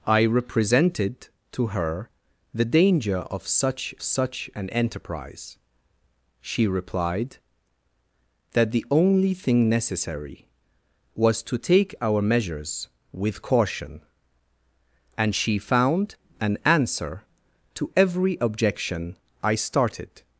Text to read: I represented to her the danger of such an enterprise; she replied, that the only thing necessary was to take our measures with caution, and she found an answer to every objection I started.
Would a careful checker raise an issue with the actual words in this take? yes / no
yes